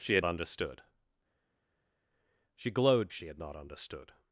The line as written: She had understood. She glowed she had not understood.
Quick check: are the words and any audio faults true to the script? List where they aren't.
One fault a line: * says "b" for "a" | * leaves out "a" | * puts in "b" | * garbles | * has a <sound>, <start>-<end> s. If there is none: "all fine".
all fine